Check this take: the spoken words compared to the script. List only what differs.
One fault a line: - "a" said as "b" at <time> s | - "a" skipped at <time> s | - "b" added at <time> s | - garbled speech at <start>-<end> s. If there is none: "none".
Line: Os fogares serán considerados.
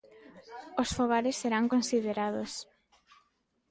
none